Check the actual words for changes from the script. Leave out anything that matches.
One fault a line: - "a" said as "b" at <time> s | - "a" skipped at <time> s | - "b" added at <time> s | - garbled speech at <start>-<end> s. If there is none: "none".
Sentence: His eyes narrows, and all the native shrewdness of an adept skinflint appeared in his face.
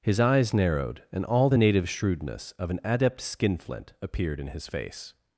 - "narrows" said as "narrowed" at 0.5 s